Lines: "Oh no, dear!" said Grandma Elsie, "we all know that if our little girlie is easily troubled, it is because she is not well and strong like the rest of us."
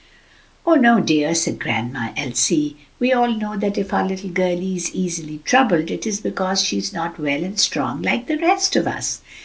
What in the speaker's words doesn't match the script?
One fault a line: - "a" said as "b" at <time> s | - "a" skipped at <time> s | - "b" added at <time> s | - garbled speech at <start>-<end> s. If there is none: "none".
none